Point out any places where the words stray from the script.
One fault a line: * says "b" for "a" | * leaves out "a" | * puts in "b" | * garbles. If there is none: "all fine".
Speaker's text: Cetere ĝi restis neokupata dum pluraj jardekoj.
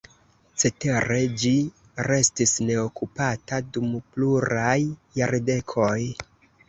all fine